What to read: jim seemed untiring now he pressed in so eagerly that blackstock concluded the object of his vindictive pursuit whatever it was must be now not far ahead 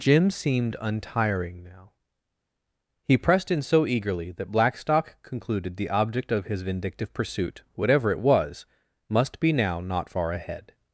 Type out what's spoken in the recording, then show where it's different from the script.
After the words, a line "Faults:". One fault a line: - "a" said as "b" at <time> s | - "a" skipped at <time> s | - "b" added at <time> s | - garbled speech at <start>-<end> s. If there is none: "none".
jim seemed untiring now he pressed in so eagerly that blackstock concluded the object of his vindictive pursuit whatever it was must be now not far ahead
Faults:
none